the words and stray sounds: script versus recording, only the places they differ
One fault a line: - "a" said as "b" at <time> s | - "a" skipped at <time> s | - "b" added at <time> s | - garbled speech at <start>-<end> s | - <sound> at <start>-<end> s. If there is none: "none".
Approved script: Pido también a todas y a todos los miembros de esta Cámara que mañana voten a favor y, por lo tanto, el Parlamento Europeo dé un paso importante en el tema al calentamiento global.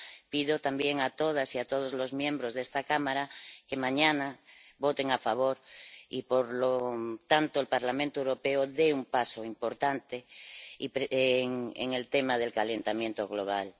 - "al" said as "del" at 12.4 s